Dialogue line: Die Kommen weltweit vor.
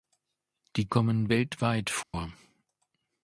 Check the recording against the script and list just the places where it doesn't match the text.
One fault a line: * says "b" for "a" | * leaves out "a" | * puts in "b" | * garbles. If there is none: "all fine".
all fine